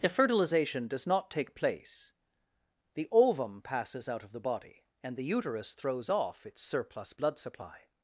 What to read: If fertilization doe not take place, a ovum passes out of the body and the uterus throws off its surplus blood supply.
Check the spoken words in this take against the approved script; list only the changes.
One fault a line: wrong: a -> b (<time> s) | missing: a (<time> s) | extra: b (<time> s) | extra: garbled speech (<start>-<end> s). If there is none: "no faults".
wrong: doe -> does (0.9 s)
wrong: a -> the (3.0 s)